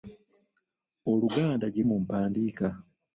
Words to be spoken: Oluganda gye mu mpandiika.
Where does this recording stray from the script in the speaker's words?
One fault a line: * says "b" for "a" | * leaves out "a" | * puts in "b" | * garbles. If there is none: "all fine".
all fine